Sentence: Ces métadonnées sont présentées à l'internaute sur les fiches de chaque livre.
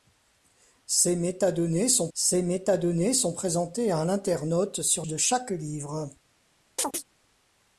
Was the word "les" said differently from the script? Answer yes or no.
yes